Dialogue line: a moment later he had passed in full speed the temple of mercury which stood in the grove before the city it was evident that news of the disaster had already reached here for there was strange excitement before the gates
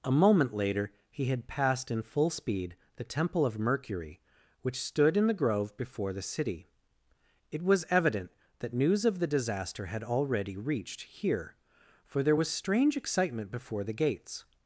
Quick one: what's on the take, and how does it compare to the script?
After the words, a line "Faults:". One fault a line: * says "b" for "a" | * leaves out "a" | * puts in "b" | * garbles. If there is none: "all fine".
a moment later he had passed in full speed the temple of mercury which stood in the grove before the city it was evident that news of the disaster had already reached here for there was strange excitement before the gates
Faults:
all fine